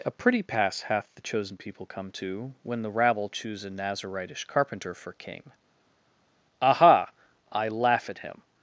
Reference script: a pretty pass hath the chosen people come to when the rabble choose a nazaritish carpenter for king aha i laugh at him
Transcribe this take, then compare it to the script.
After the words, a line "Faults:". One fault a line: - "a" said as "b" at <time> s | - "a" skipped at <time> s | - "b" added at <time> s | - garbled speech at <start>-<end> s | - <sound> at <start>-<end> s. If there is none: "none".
a pretty pass hath the chosen people come to when the rabble choose a nazaritish carpenter for king aha i laugh at him
Faults:
none